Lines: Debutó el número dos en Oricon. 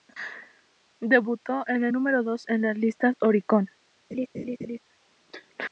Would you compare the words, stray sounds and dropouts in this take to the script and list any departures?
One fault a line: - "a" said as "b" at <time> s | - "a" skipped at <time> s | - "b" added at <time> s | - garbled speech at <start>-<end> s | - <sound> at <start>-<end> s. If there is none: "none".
- "en" added at 1.7 s
- "las listas" added at 2.6 s
- laugh at 4.1-4.8 s